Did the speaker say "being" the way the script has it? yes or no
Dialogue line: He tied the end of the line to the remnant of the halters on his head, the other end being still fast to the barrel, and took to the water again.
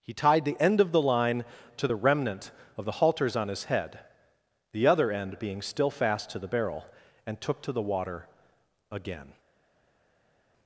yes